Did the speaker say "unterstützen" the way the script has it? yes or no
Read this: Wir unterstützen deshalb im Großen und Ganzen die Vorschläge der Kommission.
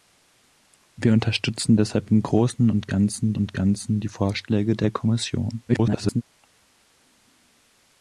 yes